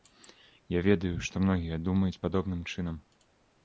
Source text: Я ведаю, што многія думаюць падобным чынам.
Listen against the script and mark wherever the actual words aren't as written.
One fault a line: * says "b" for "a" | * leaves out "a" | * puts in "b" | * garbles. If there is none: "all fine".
all fine